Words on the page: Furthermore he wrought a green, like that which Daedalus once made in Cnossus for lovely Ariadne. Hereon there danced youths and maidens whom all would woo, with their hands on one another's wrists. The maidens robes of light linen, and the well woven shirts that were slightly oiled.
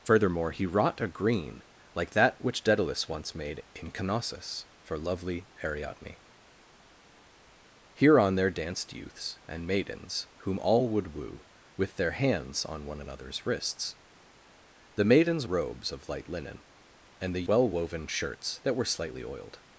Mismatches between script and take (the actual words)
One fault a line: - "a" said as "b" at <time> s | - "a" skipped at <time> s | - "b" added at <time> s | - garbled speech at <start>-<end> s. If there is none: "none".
none